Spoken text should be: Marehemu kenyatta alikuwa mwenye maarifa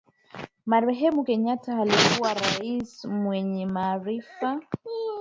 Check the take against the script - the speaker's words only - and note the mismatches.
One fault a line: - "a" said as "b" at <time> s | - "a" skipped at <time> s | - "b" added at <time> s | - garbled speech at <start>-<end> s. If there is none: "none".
- "rais" added at 2.3 s